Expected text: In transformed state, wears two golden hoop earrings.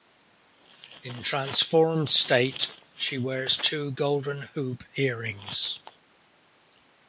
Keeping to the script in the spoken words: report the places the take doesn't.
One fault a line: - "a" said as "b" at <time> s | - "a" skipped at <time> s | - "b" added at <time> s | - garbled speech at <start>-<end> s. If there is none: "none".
- "she" added at 3.0 s